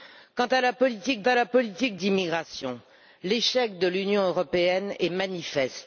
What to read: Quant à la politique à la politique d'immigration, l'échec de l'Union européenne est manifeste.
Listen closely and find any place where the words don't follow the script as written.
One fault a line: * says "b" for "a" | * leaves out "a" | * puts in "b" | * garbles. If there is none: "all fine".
all fine